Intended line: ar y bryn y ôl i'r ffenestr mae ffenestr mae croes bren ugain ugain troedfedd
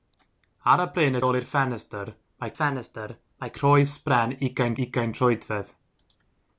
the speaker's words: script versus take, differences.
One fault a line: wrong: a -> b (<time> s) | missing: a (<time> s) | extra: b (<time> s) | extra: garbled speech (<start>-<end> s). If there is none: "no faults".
no faults